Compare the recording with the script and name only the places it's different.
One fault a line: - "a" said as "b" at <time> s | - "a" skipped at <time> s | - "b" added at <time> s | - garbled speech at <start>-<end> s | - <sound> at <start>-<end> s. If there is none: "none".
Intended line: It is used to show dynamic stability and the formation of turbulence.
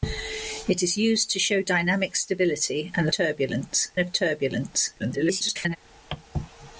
- "formation" said as "turbulence" at 3.1 s
- garbled speech at 5.0-5.8 s